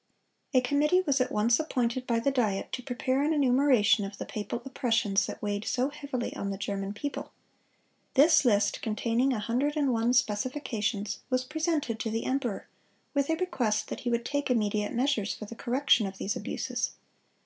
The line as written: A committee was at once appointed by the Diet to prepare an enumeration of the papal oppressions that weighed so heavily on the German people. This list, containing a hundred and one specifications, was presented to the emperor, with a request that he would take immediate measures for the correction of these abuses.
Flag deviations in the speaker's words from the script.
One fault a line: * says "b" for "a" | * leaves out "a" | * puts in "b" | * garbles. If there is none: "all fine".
all fine